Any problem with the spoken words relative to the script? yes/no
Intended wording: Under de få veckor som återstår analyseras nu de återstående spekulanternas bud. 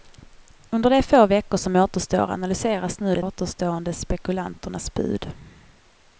no